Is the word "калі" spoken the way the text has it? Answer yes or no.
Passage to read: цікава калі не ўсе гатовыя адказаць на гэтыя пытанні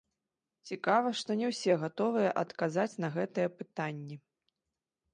no